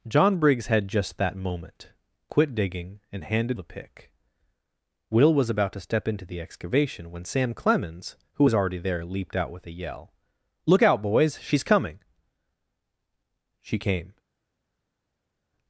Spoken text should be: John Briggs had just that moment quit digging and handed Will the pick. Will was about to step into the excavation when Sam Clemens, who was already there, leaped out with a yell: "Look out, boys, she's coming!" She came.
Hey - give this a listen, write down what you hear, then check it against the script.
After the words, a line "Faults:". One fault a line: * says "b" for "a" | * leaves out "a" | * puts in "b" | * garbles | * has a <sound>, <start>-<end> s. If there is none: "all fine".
John Briggs had just that moment quit digging and handed The pick. Will was about to step into the excavation when Sam Clemens, who was already there, leaped out with a yell: "Look out, boys, she's coming!" She came.
Faults:
* leaves out "Will"